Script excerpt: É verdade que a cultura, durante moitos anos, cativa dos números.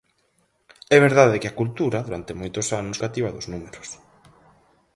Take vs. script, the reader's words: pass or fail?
pass